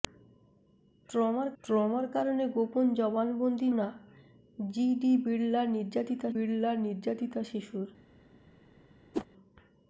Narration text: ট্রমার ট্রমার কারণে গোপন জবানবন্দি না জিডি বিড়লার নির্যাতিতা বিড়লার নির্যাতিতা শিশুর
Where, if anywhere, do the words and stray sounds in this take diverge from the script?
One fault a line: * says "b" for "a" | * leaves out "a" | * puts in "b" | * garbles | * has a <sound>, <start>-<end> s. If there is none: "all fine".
* has a whoosh, 9.1-9.3 s